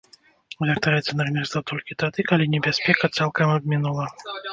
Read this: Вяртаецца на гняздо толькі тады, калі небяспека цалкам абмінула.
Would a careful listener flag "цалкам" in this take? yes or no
no